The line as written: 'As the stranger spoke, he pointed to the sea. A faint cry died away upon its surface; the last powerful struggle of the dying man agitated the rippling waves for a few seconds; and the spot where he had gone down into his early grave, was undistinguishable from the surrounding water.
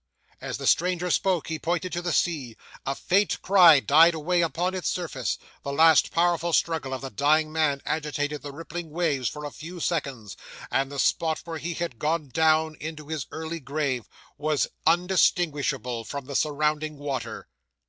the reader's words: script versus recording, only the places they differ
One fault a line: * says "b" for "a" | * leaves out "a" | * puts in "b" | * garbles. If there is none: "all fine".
all fine